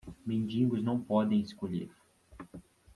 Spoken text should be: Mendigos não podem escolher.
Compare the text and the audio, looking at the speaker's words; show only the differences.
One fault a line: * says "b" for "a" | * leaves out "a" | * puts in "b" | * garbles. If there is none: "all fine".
all fine